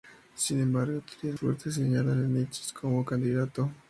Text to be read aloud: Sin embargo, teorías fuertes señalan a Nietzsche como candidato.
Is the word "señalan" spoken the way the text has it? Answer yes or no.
yes